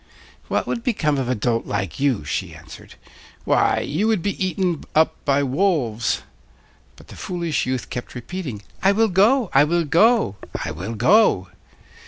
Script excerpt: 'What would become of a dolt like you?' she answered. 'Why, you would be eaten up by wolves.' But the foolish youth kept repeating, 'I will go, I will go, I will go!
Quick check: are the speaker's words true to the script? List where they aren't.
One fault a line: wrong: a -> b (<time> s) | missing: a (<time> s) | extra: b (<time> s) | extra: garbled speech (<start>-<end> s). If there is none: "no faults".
no faults